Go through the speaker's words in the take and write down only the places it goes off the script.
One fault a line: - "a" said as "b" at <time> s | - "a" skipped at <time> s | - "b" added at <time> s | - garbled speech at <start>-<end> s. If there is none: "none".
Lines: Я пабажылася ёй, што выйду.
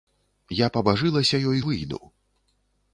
- "што" skipped at 1.6 s